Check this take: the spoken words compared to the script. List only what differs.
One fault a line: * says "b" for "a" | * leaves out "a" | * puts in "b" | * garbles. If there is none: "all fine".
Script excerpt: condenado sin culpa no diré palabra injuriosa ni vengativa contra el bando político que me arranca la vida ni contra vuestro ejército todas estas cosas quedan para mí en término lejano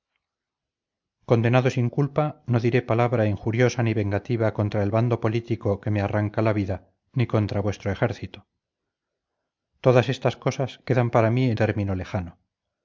all fine